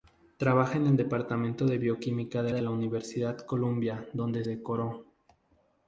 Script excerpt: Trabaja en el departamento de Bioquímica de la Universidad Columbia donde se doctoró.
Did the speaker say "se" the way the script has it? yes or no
no